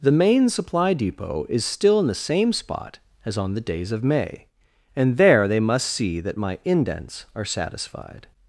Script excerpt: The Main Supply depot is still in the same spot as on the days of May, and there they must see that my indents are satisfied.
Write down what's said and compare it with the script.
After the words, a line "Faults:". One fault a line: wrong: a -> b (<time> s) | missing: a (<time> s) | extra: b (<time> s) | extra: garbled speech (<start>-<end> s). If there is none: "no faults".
The Main Supply depot is still in the same spot as on the days of May, and there they must see that my indents are satisfied.
Faults:
no faults